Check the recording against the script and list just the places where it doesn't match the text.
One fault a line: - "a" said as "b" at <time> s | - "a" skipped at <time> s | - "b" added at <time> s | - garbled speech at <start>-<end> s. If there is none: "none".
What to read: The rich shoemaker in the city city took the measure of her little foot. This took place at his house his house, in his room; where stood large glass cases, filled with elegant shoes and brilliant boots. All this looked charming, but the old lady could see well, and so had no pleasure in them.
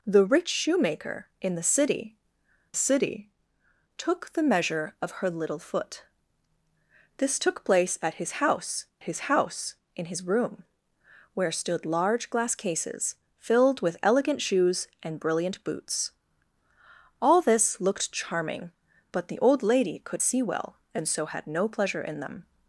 none